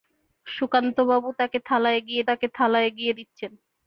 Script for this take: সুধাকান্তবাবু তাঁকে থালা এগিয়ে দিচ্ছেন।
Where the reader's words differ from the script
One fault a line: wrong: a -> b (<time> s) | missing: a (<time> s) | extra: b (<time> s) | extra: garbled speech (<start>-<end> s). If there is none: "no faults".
extra: তাঁকে থালা এগিয়ে (2.3 s)